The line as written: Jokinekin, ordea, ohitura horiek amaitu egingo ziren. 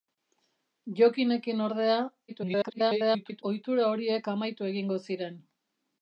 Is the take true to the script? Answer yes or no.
no